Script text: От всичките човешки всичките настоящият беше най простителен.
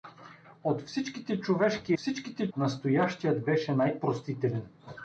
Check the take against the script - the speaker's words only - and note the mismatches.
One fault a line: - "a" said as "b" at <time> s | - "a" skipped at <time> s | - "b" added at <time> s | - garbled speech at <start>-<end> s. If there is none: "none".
none